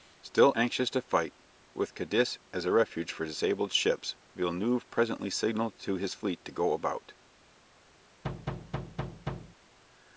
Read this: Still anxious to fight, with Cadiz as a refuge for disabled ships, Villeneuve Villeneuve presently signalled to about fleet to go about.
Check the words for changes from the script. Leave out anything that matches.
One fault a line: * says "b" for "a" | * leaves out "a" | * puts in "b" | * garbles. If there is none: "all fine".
* leaves out "Villeneuve"
* says "his" for "about"